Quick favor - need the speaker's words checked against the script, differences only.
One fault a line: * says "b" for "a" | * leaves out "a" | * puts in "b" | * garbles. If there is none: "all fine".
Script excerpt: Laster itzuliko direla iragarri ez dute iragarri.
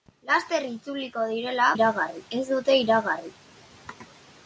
all fine